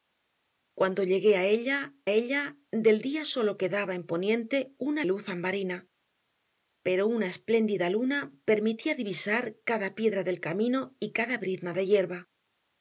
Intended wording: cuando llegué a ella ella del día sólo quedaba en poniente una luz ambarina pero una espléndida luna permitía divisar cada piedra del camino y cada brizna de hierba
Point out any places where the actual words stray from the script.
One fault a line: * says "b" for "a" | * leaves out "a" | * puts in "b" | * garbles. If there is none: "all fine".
all fine